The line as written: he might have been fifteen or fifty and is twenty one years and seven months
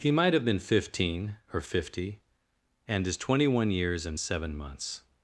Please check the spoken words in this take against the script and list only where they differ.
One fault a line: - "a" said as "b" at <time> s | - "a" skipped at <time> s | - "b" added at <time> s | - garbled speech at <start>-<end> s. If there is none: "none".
none